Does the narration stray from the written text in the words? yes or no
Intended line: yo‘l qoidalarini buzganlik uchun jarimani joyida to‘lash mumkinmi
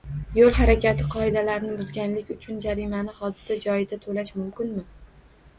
yes